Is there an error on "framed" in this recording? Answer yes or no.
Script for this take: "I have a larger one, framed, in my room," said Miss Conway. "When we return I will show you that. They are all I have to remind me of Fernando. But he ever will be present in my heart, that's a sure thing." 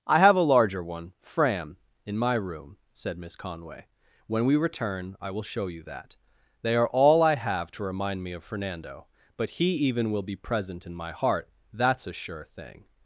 yes